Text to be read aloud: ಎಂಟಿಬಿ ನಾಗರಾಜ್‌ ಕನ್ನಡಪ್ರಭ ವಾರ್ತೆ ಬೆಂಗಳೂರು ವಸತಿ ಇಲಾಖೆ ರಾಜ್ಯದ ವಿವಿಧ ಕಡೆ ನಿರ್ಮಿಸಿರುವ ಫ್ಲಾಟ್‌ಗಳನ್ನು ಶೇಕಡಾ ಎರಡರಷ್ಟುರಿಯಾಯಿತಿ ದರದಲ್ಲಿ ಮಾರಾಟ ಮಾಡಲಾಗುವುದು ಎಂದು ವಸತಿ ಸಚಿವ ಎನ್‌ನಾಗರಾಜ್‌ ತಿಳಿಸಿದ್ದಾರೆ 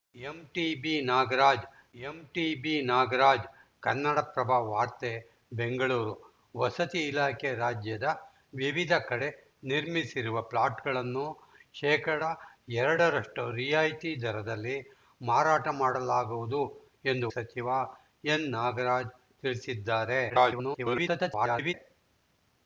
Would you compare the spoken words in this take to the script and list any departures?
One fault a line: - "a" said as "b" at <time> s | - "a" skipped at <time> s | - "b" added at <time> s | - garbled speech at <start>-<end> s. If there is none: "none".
- "ಎಂಟಿಬಿ ನಾಗರಾಜ್" added at 2.0 s
- "ವಸತಿ" skipped at 17.3 s
- garbled speech at 20.3-21.7 s